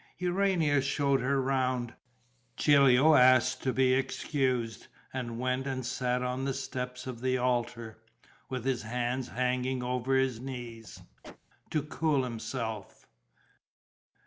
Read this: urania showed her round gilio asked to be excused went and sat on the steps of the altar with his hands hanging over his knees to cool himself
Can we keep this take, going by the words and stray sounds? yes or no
no